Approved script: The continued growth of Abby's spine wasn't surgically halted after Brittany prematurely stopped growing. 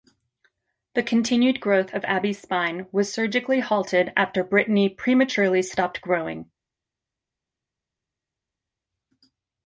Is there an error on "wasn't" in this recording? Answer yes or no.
yes